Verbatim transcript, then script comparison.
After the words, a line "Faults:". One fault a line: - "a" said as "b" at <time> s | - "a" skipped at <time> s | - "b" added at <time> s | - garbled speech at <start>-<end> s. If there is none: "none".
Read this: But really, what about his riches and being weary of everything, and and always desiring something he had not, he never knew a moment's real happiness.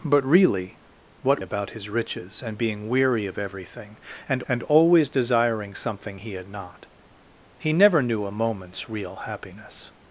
But really, what about his riches and being weary of everything, and and always desiring something he had not, he never knew a moment's real happiness.
Faults:
none